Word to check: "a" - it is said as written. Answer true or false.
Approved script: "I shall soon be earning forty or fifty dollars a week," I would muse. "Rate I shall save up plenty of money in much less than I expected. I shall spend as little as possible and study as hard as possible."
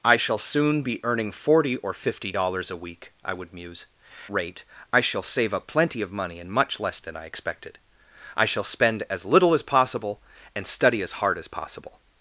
true